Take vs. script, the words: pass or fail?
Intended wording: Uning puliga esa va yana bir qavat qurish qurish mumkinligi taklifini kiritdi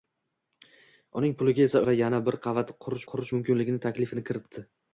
pass